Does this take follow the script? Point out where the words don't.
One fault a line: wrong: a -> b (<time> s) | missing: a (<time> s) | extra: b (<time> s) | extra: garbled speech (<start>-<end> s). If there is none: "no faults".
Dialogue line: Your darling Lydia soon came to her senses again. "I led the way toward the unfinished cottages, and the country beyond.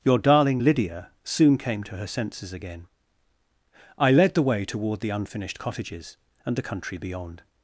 no faults